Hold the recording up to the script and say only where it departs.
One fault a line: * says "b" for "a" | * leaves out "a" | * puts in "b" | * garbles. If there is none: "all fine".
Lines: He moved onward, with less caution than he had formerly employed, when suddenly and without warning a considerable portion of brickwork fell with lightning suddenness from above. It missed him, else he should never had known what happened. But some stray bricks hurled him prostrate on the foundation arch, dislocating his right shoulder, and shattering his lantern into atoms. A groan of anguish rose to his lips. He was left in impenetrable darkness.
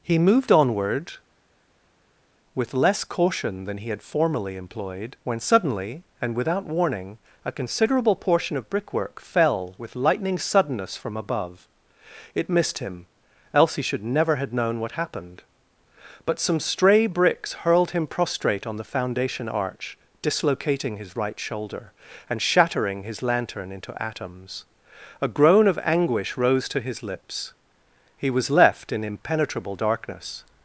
* says "have" for "had"